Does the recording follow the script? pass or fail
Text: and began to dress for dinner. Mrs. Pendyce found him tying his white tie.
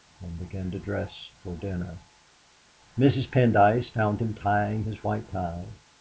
pass